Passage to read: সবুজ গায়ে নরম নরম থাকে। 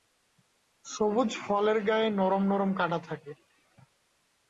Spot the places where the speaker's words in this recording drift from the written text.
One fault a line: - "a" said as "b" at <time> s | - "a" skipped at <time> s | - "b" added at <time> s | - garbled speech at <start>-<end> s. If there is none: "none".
- "ফলের" added at 1.4 s
- "কাঁটা" added at 2.8 s